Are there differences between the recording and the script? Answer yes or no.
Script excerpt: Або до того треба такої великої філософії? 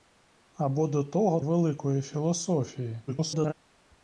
yes